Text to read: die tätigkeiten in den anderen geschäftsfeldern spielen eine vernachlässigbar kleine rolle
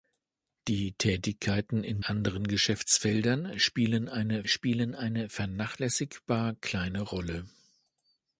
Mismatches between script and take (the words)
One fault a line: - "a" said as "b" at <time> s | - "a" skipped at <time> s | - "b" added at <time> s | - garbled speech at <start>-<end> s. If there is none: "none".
- "den" skipped at 2.0 s
- "spielen eine" added at 4.5 s